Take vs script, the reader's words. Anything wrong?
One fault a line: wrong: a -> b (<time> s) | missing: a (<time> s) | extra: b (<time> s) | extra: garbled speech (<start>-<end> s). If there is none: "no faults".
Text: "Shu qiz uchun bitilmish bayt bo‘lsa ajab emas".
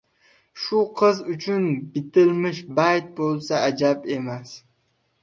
no faults